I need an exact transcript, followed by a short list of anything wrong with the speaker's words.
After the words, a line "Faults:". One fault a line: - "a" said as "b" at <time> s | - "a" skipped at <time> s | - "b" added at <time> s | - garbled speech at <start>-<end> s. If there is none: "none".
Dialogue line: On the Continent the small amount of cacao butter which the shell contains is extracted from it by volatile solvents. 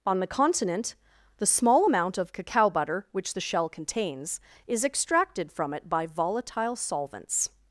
On the Continent the small amount of cacao butter which the shell contains is extracted from it by volatile solvents.
Faults:
none